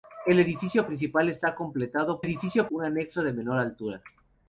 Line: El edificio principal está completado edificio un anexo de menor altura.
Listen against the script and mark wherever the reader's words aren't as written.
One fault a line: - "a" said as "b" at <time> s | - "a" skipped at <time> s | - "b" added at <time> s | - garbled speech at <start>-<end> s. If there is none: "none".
none